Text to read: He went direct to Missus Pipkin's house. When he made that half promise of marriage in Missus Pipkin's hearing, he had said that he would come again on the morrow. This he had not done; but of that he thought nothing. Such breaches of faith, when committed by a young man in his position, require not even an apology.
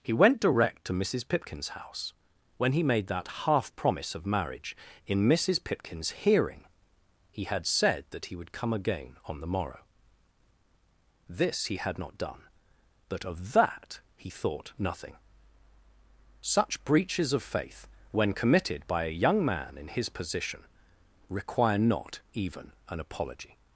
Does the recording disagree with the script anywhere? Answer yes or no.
no